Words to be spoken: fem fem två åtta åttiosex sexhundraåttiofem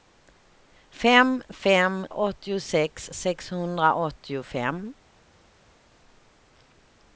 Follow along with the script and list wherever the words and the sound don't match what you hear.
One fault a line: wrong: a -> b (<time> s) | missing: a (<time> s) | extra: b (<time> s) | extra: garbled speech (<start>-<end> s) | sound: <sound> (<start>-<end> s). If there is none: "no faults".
missing: två åtta (2.1 s)